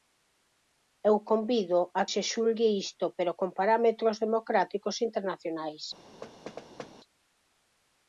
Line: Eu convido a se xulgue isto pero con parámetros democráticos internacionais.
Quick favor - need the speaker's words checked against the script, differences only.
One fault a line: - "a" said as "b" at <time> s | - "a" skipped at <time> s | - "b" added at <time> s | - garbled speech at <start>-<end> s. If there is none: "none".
none